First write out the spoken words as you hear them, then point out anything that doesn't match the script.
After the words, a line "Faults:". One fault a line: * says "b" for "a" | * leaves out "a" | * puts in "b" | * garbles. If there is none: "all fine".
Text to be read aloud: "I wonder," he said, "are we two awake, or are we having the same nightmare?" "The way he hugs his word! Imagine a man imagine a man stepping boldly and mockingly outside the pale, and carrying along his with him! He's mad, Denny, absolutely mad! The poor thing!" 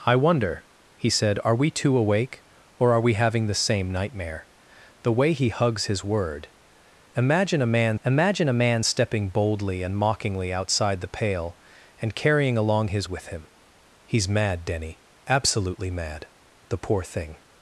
"I wonder," he said, "are we two awake, or are we having the same nightmare?" "The way he hugs his word! Imagine a man imagine a man stepping boldly and mockingly outside the pale, and carrying along his with him! He's mad, Denny, absolutely mad! The poor thing!"
Faults:
all fine